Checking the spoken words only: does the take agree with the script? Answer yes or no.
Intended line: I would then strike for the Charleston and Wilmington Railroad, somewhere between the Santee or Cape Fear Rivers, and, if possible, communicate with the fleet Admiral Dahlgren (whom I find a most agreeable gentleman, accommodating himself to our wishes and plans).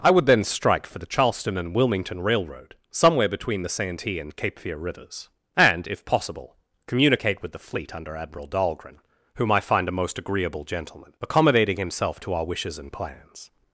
no